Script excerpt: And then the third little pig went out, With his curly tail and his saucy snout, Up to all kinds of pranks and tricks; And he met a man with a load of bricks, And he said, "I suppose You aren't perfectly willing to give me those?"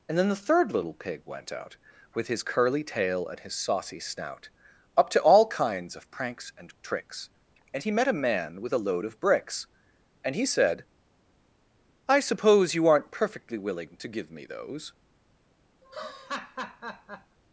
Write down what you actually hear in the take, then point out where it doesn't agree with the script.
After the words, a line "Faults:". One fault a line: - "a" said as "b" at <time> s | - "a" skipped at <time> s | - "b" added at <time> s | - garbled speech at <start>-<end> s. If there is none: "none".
And then the third little pig went out, With his curly tail and his saucy snout, Up to all kinds of pranks and tricks; And he met a man with a load of bricks, And he said, "I suppose You aren't perfectly willing to give me those?"
Faults:
none